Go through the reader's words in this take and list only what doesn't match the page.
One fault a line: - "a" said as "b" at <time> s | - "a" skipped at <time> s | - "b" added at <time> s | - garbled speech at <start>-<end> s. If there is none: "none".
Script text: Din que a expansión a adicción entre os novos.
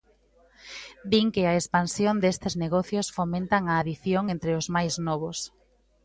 - "destes negocios fomentan" added at 2.2 s
- "máis" added at 4.7 s